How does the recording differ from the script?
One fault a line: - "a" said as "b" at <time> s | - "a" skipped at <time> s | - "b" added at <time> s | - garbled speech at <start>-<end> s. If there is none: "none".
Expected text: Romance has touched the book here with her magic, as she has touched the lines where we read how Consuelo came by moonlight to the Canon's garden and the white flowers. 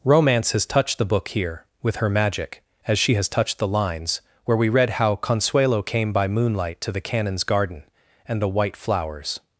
none